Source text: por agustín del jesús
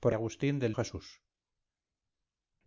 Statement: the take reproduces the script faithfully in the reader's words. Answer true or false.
true